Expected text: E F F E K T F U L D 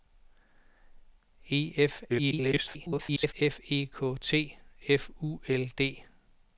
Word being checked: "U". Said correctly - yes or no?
yes